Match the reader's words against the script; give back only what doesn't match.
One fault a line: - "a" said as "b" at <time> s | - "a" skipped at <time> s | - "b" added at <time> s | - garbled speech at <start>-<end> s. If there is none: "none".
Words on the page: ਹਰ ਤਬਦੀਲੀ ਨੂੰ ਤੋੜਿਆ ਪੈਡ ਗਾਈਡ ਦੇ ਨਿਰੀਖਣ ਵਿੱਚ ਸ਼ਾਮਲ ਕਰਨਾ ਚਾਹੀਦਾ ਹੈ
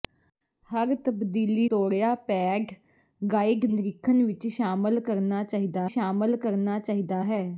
- "ਨੂੰ" skipped at 1.7 s
- "ਦੇ" skipped at 3.7 s
- "ਸ਼ਾਮਲ ਕਰਨਾ ਚਾਹੀਦਾ" added at 5.9 s